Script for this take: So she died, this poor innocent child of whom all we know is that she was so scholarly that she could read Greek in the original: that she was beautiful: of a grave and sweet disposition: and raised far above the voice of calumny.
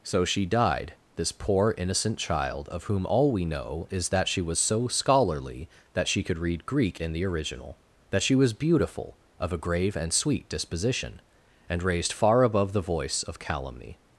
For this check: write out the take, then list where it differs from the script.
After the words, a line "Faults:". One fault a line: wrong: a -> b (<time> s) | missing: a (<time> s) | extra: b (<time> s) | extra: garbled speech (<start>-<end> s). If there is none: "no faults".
So she died, this poor innocent child of whom all we know is that she was so scholarly that she could read Greek in the original: that she was beautiful: of a grave and sweet disposition: and raised far above the voice of calumny.
Faults:
no faults